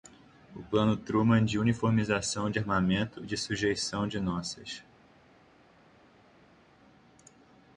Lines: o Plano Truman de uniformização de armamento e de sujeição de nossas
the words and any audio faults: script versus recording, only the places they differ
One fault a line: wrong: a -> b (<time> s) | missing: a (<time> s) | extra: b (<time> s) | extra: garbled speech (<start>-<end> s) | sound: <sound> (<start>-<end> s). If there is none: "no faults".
no faults